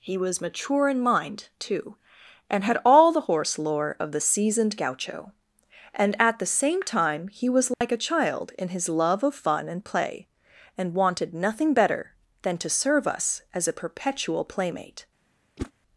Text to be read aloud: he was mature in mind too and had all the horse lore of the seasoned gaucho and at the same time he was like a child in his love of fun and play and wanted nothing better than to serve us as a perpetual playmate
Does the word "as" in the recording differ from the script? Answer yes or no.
no